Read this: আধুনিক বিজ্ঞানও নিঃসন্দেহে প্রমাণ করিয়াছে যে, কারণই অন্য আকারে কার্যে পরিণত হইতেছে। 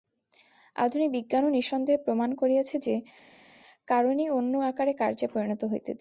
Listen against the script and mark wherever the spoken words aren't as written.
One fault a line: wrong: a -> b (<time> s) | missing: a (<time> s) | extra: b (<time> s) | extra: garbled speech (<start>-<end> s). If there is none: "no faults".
no faults